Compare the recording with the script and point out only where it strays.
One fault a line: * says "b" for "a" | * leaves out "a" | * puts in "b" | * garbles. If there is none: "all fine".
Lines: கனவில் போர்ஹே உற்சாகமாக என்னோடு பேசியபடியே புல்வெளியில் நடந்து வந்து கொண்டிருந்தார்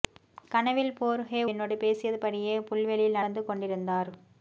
* leaves out "உற்சாகமாக"
* leaves out "நடந்து"